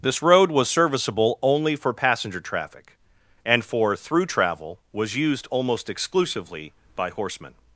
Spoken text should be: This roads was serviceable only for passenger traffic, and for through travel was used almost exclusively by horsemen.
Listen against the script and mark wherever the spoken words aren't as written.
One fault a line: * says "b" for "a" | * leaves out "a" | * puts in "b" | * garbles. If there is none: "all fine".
* says "road" for "roads"